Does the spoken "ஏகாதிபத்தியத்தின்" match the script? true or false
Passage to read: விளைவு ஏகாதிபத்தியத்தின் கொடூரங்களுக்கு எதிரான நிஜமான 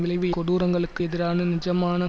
false